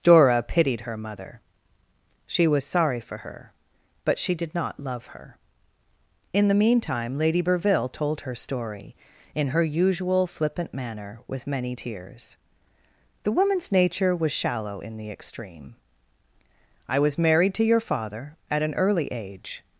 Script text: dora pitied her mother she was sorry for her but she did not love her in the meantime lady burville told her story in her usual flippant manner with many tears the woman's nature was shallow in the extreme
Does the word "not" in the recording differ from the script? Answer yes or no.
no